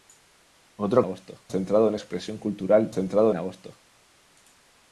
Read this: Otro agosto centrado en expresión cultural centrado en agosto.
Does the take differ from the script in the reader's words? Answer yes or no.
no